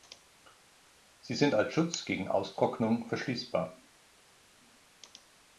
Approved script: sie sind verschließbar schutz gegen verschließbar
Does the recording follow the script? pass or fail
fail